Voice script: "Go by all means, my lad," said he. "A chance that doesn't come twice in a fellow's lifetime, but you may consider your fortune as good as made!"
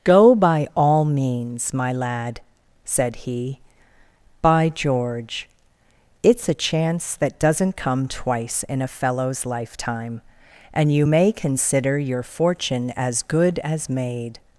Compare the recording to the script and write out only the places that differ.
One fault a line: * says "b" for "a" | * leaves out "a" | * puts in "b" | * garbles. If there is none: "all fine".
* puts in "By George it's"
* says "and" for "but"